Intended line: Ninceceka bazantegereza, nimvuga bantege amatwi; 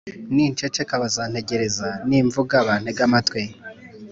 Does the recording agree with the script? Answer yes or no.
yes